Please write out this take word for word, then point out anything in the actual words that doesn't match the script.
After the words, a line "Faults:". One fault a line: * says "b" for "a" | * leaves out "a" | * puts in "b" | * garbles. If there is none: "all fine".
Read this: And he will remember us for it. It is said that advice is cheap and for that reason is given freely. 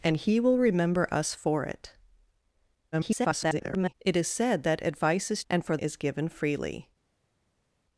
And he will remember us for it. [garbled] It is said that advice is and for is given freely.
Faults:
* garbles
* leaves out "cheap"
* leaves out "that reason"